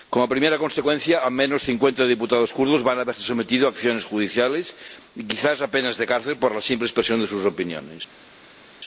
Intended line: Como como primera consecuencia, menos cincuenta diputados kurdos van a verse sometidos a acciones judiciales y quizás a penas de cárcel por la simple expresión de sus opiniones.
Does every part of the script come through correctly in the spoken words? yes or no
no